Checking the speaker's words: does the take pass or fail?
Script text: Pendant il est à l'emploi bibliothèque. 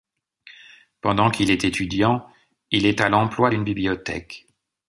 fail